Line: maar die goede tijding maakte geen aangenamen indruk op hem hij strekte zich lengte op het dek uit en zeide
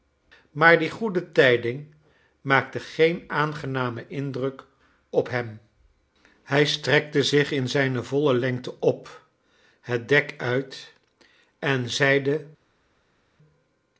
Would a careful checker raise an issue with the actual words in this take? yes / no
yes